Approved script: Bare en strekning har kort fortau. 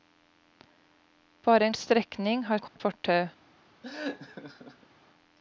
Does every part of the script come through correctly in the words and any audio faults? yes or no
no